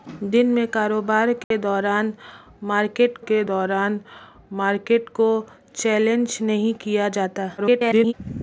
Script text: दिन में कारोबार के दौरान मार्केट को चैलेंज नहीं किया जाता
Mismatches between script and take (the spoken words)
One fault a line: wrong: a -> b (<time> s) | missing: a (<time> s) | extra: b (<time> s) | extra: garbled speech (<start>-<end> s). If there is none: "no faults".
extra: के दौरान मार्केट (3.2 s)
extra: garbled speech (7.6-8.1 s)